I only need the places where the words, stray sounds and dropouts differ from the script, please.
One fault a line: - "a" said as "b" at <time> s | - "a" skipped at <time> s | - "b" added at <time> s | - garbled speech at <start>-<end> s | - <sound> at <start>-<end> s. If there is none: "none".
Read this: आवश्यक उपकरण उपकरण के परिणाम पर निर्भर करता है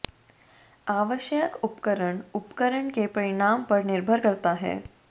none